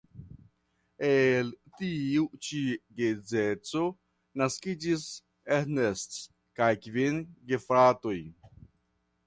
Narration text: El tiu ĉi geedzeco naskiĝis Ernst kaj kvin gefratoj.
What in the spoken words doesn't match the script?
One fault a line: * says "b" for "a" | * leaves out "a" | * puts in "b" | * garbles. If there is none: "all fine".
all fine